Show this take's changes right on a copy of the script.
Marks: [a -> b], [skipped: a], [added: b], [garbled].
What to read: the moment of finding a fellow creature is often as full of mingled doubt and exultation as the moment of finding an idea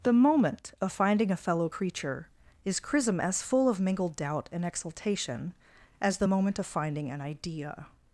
the moment of finding a fellow creature is [often -> chrism] as full of mingled doubt and exultation as the moment of finding an idea